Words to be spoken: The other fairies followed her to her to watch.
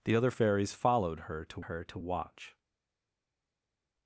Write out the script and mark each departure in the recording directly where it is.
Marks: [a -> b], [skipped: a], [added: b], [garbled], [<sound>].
The other fairies followed her to her to watch.